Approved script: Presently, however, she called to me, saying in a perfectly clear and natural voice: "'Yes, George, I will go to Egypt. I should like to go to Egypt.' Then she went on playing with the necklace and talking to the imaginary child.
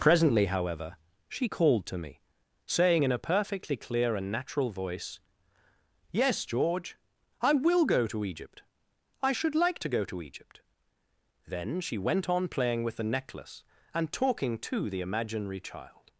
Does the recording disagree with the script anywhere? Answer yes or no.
no